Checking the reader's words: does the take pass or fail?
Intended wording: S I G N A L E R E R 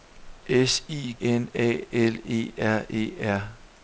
fail